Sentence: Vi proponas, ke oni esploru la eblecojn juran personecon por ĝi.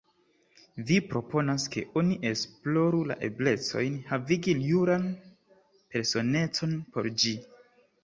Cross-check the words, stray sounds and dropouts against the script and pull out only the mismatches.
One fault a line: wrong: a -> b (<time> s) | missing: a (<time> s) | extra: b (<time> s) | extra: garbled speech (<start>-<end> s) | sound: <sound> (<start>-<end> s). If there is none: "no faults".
extra: havigi (4.1 s)